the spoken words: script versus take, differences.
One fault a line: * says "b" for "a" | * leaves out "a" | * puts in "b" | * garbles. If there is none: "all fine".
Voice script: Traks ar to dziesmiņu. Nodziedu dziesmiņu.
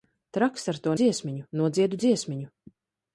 all fine